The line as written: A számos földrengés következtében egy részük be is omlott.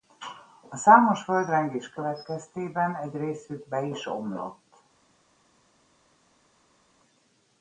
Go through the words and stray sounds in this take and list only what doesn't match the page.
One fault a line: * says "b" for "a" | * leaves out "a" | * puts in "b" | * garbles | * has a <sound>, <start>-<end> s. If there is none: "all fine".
all fine